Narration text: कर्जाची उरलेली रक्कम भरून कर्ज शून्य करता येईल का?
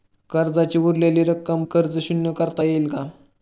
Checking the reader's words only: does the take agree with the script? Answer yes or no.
no